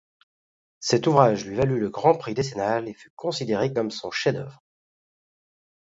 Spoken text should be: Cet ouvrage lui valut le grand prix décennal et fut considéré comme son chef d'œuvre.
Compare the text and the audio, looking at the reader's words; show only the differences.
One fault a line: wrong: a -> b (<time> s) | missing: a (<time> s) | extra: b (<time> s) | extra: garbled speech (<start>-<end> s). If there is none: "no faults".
no faults